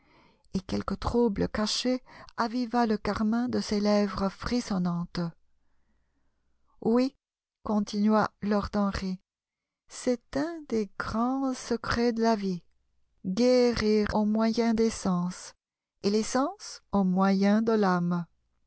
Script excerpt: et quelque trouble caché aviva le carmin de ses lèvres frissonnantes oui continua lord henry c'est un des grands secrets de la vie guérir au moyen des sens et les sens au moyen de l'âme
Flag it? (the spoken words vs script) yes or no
no